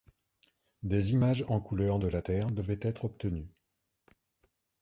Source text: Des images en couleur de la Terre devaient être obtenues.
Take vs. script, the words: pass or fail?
pass